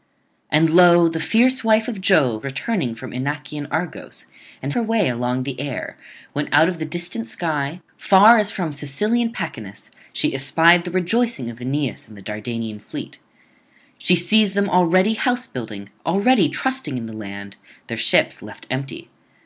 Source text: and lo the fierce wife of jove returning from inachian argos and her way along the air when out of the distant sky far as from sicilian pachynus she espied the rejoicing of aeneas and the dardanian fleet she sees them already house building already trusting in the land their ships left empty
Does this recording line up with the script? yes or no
yes